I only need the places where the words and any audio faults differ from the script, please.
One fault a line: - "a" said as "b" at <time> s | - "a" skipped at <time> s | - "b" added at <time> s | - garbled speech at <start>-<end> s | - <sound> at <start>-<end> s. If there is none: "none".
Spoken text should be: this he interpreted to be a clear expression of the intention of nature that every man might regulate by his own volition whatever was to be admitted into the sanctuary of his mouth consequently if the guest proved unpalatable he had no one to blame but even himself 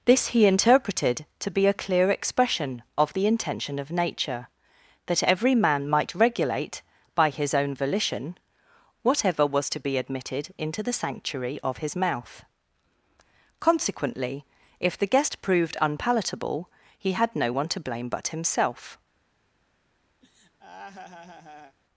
- "even" skipped at 18.3 s
- laugh at 20.2-21.8 s